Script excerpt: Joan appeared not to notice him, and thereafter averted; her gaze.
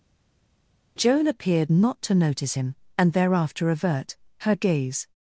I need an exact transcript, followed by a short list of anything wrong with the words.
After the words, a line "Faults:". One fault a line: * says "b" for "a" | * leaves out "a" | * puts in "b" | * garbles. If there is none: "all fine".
Joan appeared not to notice him, and thereafter avert; her gaze.
Faults:
* says "avert" for "averted"